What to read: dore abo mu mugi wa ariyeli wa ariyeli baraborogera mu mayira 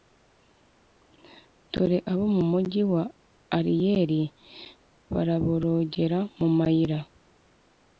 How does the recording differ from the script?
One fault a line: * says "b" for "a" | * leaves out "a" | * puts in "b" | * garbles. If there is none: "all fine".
* leaves out "wa ariyeli"